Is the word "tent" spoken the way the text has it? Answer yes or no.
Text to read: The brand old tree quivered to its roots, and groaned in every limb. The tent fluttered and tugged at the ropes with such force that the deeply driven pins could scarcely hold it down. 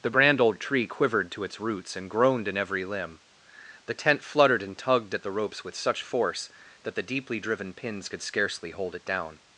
yes